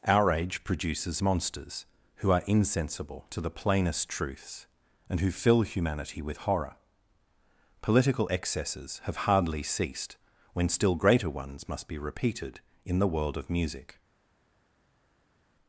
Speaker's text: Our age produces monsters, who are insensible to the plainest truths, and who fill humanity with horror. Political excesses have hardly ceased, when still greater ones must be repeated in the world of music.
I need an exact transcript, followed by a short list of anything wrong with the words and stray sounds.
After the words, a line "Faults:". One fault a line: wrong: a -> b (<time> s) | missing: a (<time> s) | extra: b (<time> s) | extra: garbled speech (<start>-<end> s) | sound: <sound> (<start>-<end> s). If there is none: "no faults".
Our age produces monsters, who are insensible to the plainest truths, and who fill humanity with horror. Political excesses have hardly ceased, when still greater ones must be repeated in the world of music.
Faults:
no faults